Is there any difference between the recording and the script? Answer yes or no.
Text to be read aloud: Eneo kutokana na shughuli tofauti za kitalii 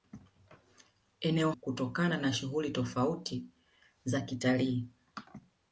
no